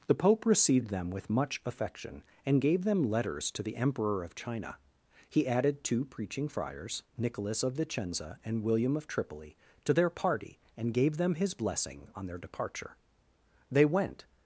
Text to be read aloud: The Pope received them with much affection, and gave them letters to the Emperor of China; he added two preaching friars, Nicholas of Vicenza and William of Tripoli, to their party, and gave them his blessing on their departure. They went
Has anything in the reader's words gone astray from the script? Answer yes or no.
no